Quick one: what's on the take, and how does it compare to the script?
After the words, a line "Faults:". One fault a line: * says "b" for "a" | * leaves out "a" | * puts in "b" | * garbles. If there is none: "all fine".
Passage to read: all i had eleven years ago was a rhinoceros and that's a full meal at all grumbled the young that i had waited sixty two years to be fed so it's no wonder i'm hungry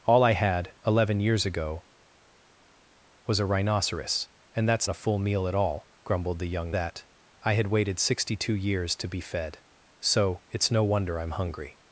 all i had eleven years ago was a rhinoceros and that's a full meal at all grumbled the young that i had waited sixty two years to be fed so it's no wonder i'm hungry
Faults:
all fine